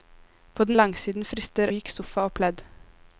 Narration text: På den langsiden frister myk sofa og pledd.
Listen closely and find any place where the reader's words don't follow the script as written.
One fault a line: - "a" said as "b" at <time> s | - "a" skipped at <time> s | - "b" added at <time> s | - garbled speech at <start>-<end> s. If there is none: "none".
none